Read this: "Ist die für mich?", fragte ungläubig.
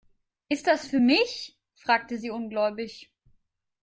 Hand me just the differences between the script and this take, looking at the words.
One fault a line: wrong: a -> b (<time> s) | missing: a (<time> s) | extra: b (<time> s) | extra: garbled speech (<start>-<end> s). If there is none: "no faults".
wrong: die -> das (0.7 s)
extra: sie (2.2 s)